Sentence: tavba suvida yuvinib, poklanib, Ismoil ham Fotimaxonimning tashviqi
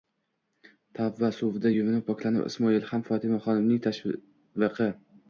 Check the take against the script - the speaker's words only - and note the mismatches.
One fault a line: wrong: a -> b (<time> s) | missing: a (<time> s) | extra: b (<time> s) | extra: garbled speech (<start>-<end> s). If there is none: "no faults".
no faults